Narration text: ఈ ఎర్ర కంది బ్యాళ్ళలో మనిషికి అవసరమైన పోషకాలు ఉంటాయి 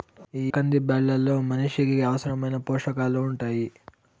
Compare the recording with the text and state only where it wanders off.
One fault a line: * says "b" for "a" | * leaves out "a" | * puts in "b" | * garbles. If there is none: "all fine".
* leaves out "ఎర్ర"